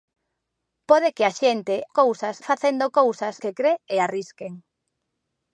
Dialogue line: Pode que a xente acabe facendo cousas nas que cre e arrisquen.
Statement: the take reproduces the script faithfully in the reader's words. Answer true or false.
false